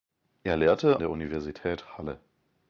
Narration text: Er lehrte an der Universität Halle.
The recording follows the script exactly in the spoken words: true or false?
false